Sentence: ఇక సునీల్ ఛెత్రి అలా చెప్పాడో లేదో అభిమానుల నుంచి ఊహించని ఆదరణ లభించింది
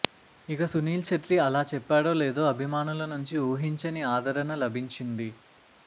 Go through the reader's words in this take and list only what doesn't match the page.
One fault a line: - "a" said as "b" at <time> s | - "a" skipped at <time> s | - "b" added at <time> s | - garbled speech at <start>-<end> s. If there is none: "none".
none